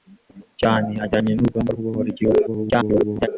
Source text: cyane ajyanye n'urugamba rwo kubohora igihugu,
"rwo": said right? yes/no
no